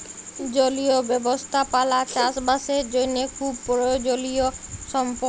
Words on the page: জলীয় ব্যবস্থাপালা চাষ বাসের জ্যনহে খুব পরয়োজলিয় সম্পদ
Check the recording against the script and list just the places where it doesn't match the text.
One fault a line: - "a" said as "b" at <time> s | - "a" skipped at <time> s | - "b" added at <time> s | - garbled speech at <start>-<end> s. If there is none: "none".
none